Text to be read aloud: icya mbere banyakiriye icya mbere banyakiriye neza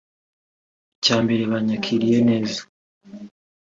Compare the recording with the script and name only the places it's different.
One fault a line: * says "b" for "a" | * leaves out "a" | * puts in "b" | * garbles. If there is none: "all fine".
* leaves out "icya mbere banyakiriye"